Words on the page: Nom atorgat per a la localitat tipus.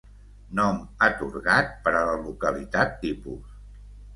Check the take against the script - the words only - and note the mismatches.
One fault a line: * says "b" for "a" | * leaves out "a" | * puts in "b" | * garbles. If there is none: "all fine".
all fine